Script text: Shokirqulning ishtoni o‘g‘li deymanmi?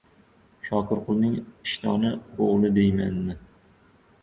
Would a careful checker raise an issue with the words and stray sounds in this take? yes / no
no